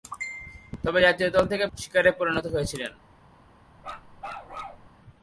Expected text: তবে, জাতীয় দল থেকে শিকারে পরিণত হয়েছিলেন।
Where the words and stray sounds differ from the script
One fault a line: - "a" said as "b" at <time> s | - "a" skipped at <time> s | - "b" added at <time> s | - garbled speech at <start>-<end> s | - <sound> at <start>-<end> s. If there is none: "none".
- bark at 3.8-4.9 s